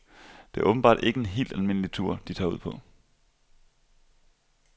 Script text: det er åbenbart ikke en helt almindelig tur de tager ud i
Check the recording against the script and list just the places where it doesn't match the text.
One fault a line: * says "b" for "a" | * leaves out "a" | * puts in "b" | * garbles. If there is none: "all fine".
* says "på" for "i"